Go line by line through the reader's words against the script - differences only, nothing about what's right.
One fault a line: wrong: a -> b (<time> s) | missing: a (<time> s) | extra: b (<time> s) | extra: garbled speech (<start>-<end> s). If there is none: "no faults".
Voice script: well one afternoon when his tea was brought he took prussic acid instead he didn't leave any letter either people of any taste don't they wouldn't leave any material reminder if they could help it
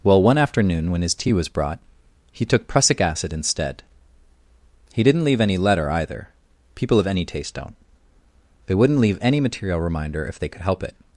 no faults